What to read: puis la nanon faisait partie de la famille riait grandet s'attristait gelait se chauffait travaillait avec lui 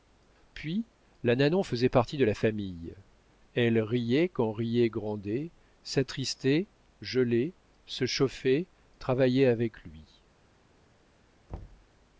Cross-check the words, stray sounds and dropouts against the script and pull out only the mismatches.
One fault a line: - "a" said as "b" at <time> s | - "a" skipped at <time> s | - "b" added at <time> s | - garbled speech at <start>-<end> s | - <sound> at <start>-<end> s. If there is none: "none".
- "elle riait quand" added at 3.5 s
- thud at 11.5-11.9 s